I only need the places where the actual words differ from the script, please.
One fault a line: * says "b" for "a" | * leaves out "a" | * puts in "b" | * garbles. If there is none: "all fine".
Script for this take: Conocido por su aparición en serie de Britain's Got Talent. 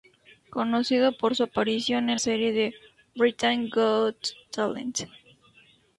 all fine